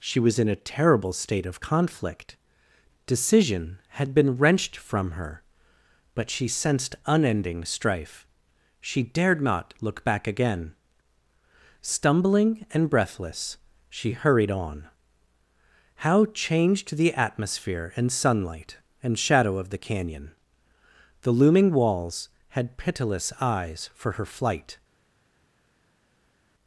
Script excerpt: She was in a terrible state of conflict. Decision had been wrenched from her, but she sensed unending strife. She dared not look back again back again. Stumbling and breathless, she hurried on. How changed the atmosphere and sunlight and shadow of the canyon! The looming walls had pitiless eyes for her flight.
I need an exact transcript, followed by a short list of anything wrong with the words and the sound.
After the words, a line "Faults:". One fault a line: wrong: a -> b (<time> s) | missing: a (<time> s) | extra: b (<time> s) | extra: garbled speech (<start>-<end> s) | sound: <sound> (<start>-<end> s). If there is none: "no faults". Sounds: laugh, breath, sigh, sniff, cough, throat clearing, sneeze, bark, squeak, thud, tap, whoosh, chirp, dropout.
She was in a terrible state of conflict. Decision had been wrenched from her, but she sensed unending strife. She dared not look back again. Stumbling and breathless, she hurried on. How changed the atmosphere and sunlight and shadow of the canyon! The looming walls had pitiless eyes for her flight.
Faults:
missing: back again (10.7 s)